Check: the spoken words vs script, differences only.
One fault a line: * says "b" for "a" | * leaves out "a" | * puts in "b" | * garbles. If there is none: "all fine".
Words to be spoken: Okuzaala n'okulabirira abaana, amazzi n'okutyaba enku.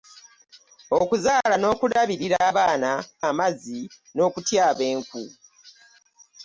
all fine